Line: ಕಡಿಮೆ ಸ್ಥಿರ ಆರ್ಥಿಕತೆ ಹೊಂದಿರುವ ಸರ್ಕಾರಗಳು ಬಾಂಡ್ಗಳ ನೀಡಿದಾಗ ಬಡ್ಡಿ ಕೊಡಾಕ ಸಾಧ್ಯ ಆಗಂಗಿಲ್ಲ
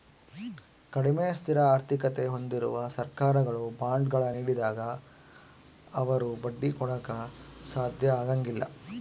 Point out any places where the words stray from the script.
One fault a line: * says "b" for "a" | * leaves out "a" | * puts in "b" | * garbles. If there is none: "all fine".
* puts in "ಅವರು"